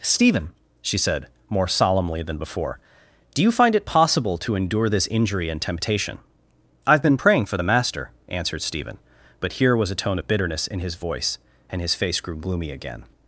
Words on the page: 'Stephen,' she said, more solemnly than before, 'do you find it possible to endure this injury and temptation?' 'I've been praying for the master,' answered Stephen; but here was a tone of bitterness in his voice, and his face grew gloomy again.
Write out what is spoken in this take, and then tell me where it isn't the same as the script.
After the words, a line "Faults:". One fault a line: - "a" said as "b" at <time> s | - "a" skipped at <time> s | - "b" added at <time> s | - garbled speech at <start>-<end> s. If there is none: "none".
'Stephen,' she said, more solemnly than before, 'do you find it possible to endure this injury and temptation?' 'I've been praying for the master,' answered Stephen; but here was a tone of bitterness in his voice, and his face grew gloomy again.
Faults:
none